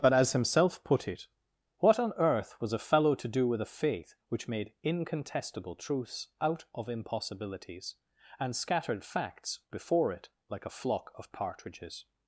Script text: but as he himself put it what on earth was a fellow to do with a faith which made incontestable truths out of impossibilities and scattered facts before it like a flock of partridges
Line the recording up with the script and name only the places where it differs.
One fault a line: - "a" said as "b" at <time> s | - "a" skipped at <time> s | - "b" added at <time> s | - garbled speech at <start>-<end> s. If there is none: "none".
- "he" skipped at 0.3 s